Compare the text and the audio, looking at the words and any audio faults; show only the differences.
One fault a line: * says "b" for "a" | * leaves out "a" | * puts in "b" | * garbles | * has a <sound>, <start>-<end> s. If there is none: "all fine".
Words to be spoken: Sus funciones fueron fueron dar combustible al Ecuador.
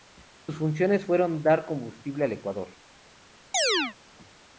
* leaves out "fueron"
* has a chirp, 3.5-4.0 s